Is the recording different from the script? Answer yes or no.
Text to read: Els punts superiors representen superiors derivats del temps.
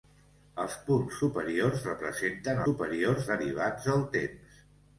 no